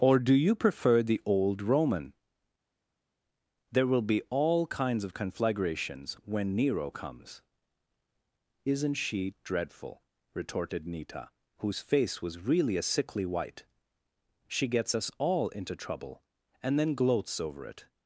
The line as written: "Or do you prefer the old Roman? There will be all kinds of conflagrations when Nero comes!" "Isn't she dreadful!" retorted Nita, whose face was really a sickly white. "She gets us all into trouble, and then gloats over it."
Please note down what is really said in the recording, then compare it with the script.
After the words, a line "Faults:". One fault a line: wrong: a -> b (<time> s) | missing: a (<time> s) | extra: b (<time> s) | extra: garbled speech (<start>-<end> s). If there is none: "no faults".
"Or do you prefer the old Roman? There will be all kinds of conflagrations when Nero comes!" "Isn't she dreadful!" retorted Nita, whose face was really a sickly white. "She gets us all into trouble, and then gloats over it."
Faults:
no faults